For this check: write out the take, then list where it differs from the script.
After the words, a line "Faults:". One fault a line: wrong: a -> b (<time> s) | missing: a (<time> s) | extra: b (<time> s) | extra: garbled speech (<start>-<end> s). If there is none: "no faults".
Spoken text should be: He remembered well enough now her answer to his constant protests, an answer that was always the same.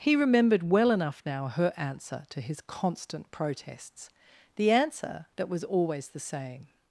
He remembered well enough now her answer to his constant protests, the answer that was always the same.
Faults:
wrong: an -> the (4.5 s)